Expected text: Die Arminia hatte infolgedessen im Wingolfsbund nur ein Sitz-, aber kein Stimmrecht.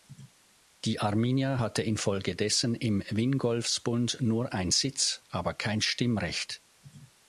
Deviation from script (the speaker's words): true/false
false